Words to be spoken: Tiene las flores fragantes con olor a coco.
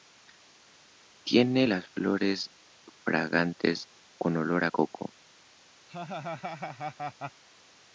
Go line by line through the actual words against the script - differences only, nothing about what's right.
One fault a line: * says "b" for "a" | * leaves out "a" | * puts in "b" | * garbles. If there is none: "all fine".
all fine